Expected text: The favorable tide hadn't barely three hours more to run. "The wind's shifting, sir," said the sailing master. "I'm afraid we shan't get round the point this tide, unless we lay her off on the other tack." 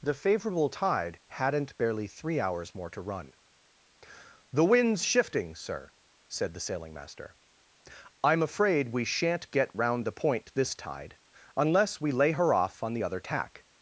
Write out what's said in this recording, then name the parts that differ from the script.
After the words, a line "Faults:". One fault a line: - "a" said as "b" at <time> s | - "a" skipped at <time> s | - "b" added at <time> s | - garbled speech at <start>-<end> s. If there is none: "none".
The favorable tide hadn't barely three hours more to run. "The wind's shifting, sir," said the sailing master. "I'm afraid we shan't get round the point this tide, unless we lay her off on the other tack."
Faults:
none